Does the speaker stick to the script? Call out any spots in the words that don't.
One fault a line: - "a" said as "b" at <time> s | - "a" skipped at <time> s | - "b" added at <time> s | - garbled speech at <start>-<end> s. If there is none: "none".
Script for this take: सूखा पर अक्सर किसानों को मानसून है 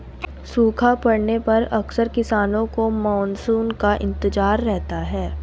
- "पड़ने" added at 1.0 s
- "का इंतजार रहता" added at 3.8 s